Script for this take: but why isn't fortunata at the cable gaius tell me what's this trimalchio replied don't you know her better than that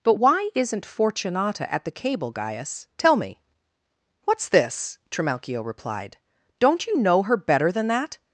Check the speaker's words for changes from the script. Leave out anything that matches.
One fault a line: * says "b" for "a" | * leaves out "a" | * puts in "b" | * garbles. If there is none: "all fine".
all fine